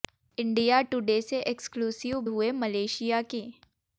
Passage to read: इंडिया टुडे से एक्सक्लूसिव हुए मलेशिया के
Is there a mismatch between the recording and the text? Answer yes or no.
no